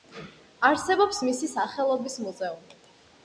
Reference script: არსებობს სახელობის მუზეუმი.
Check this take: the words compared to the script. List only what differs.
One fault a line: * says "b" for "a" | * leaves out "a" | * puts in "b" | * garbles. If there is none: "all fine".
* puts in "მისი"